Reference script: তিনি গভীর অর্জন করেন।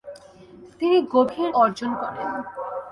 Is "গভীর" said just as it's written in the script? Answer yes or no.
yes